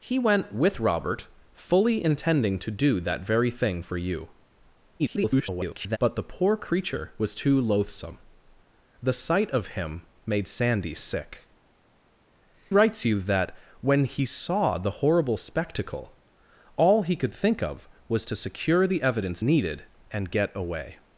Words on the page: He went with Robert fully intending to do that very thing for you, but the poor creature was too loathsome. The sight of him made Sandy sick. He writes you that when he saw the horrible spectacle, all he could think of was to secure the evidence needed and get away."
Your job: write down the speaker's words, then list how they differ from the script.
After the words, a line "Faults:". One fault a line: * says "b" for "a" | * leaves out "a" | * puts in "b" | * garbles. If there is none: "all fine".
He went with Robert fully intending to do that very thing for you, [garbled] but the poor creature was too loathsome. The sight of him made Sandy sick. Writes you that when he saw the horrible spectacle, all he could think of was to secure the evidence needed and get away."
Faults:
* garbles
* leaves out "He"